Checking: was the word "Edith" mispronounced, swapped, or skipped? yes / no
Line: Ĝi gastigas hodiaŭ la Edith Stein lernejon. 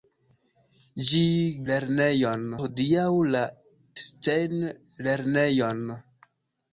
yes